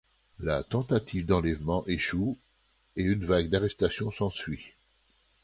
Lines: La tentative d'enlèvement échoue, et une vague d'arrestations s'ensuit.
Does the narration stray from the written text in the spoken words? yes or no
no